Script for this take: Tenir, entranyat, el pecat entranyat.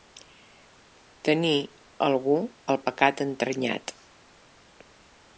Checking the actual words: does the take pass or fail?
fail